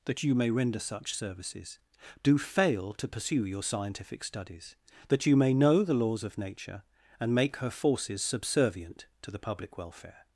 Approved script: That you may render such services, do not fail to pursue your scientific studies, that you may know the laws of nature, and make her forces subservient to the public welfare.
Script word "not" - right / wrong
wrong